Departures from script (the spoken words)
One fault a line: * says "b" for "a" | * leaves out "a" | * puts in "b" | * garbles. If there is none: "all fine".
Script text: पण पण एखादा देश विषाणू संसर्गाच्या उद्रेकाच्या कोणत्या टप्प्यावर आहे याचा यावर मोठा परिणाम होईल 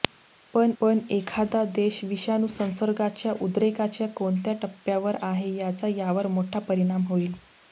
all fine